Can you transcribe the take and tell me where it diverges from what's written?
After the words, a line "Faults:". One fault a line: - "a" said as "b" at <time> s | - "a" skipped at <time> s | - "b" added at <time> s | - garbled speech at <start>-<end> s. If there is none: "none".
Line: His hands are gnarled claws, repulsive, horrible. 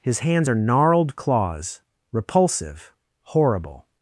His hands are gnarled claws, repulsive, horrible.
Faults:
none